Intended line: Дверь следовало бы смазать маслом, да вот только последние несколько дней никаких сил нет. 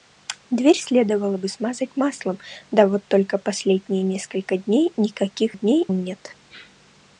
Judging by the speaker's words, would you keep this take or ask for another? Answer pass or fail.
fail